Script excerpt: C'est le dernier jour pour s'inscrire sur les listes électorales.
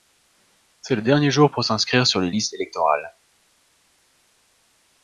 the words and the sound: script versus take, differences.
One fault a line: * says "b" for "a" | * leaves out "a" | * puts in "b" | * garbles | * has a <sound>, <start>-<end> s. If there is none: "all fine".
all fine